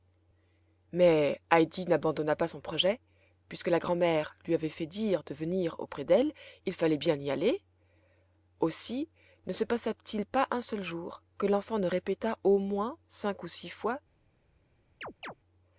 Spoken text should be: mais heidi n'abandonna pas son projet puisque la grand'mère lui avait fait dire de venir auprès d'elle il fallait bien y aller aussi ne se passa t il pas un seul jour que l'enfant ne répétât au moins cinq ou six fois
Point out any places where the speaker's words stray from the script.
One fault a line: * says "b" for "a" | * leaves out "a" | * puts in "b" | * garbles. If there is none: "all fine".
all fine